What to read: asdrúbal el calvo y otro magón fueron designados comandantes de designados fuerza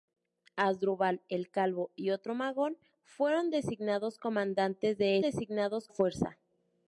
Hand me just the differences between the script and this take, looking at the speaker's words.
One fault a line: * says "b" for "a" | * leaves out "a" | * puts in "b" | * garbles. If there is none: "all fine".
all fine